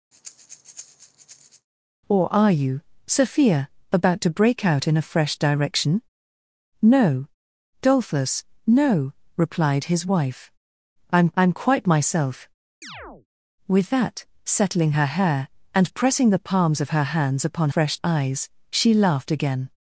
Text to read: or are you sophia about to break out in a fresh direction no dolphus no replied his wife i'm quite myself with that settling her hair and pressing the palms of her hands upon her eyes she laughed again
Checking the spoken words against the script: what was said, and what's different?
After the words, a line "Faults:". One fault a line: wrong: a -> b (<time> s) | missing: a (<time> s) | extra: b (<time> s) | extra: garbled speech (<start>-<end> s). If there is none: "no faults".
or are you sophia about to break out in a fresh direction no dolphus no replied his wife i'm i'm quite myself with that settling her hair and pressing the palms of her hands upon fresh eyes she laughed again
Faults:
extra: i'm (11.3 s)
wrong: her -> fresh (17.7 s)